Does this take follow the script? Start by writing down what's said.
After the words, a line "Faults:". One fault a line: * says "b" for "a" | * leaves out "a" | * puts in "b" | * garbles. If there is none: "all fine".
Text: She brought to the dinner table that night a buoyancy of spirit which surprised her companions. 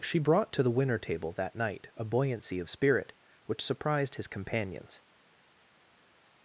She brought to the winner table that night a buoyancy of spirit which surprised his companions.
Faults:
* says "winner" for "dinner"
* says "his" for "her"